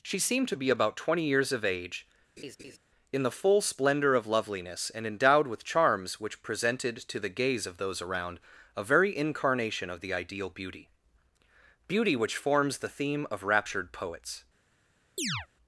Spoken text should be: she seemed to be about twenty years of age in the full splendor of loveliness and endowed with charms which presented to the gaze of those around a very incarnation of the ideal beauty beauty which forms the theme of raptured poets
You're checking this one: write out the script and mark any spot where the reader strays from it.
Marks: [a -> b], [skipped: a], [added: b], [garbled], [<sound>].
she seemed to be about twenty years of age [laugh] in the full splendor of loveliness and endowed with charms which presented to the gaze of those around a very incarnation of the ideal beauty beauty which forms the theme of raptured poets [chirp]